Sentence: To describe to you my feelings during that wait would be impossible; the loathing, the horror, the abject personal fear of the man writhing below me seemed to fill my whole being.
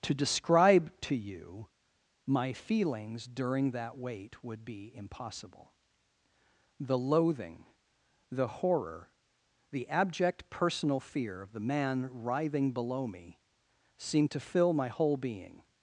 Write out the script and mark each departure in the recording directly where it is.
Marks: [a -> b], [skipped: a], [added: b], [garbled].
To describe to you my feelings during that wait would be impossible; the loathing, the horror, the abject personal fear of the man writhing below me seemed to fill my whole being.